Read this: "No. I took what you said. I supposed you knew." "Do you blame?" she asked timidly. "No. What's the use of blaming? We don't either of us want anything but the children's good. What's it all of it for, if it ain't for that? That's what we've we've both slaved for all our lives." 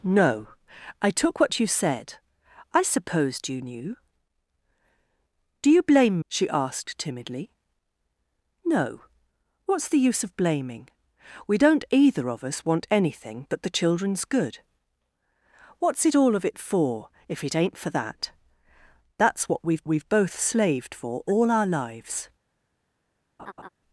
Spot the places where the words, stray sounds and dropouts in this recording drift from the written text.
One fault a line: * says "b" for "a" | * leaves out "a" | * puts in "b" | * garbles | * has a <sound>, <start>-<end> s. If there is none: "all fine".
* has a laugh, 23.4-23.7 s